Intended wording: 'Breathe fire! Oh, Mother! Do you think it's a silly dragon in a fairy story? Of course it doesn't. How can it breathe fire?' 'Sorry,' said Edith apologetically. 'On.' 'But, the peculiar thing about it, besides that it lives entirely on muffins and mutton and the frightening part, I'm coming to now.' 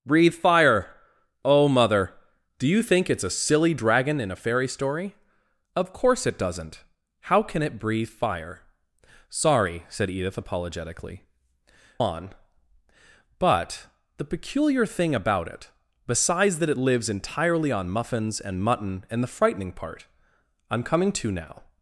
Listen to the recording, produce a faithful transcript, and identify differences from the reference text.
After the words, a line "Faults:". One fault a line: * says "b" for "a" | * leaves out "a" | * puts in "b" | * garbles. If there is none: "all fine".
'Breathe fire! Oh, Mother! Do you think it's a silly dragon in a fairy story? Of course it doesn't. How can it breathe fire?' 'Sorry,' said Edith apologetically. 'On.' 'But, the peculiar thing about it, besides that it lives entirely on muffins and mutton and the frightening part, I'm coming to now.'
Faults:
all fine